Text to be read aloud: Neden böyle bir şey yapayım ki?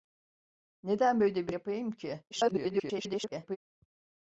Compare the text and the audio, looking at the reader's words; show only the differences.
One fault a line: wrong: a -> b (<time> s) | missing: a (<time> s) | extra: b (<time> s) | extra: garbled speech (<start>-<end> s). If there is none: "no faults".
missing: şey (1.5 s)
extra: garbled speech (2.3-3.6 s)